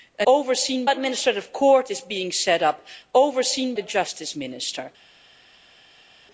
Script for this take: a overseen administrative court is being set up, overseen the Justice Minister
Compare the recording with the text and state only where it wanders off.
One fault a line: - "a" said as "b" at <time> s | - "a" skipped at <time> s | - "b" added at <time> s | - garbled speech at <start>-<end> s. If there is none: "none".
none